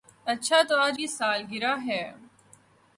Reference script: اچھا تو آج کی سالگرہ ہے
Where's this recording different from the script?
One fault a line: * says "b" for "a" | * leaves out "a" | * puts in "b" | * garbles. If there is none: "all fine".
all fine